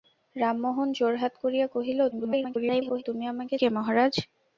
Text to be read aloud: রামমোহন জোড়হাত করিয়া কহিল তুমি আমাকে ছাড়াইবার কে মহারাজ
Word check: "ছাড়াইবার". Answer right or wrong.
wrong